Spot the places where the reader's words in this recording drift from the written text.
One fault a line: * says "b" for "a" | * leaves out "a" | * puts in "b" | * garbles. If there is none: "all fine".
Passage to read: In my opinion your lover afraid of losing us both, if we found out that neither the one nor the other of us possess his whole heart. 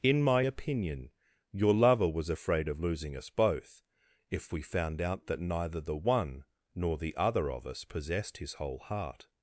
* puts in "was"
* says "possessed" for "possess"